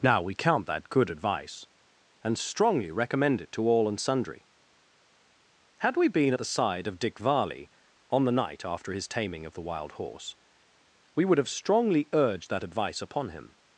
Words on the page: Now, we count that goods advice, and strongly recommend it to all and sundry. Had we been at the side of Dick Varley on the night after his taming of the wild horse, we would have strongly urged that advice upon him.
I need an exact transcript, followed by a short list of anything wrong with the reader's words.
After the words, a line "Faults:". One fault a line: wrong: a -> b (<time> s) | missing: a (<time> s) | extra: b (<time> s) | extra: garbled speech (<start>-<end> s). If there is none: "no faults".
Now, we count that good advice, and strongly recommend it to all and sundry. Had we been at the side of Dick Varley on the night after his taming of the wild horse, we would have strongly urged that advice upon him.
Faults:
wrong: goods -> good (0.9 s)